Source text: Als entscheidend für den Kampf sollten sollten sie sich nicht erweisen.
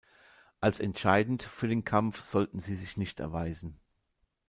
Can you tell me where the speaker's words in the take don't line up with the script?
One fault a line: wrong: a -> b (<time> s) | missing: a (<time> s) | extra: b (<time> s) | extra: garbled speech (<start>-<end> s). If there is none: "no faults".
missing: sollten (2.6 s)